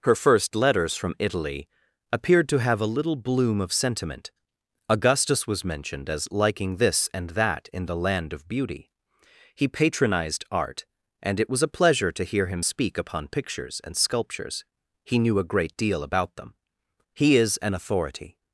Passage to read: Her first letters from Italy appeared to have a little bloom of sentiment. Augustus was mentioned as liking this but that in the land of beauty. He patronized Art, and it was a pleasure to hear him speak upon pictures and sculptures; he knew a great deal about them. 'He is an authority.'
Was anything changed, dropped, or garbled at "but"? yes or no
yes